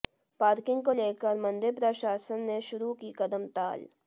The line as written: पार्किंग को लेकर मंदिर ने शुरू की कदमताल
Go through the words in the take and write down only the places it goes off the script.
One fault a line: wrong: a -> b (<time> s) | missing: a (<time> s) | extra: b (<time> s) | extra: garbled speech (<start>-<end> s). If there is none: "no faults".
extra: प्रशासन (1.7 s)